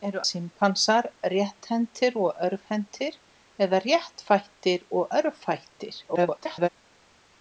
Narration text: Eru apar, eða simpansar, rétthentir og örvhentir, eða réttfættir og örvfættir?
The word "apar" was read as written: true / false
false